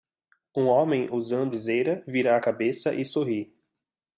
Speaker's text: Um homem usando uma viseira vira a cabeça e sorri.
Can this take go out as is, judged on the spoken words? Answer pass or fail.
fail